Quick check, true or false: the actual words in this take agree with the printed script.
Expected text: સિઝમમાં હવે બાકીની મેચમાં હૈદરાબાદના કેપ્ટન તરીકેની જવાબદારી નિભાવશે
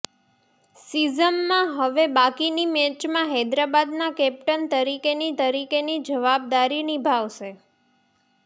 false